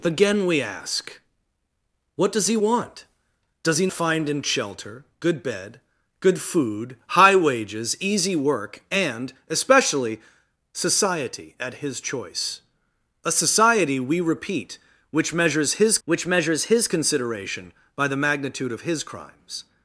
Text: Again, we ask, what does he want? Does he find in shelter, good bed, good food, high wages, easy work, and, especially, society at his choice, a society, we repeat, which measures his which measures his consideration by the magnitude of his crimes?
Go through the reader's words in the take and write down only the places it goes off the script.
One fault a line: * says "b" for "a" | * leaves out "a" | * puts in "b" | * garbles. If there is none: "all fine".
all fine